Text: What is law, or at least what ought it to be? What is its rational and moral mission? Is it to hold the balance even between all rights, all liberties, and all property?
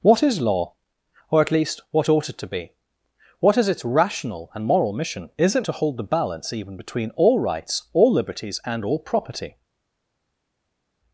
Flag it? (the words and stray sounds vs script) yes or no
no